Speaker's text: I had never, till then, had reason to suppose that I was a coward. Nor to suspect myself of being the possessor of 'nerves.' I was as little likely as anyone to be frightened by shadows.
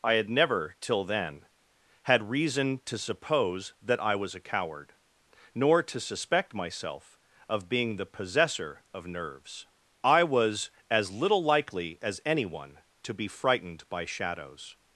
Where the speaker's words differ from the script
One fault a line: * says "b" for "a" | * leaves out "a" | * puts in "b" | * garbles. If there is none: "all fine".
all fine